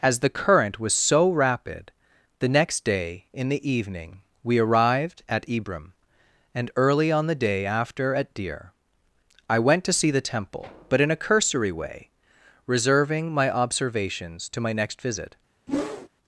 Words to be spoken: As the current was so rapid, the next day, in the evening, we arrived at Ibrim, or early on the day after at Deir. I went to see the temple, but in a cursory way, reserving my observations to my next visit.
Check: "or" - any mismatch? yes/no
yes